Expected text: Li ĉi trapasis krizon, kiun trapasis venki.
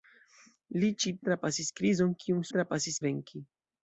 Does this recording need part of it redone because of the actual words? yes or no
no